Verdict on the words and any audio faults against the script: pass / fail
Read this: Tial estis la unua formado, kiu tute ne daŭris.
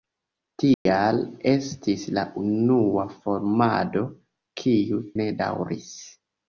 fail